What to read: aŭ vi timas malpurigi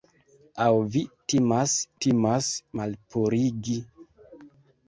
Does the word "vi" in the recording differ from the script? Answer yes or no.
no